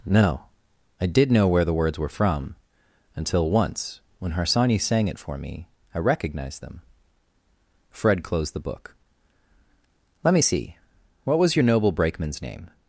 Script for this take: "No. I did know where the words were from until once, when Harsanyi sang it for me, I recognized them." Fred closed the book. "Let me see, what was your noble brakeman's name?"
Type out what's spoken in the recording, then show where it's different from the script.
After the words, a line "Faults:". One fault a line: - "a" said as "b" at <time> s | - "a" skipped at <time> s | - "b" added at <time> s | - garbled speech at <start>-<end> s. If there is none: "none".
"No. I did know where the words were from until once, when Harsanyi sang it for me, I recognized them." Fred closed the book. "Let me see, what was your noble brakeman's name?"
Faults:
none